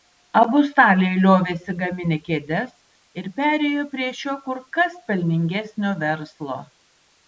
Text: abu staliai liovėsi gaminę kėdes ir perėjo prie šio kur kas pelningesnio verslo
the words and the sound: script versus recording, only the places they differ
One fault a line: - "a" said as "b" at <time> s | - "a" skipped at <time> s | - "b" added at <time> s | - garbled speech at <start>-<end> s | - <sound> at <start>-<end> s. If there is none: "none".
none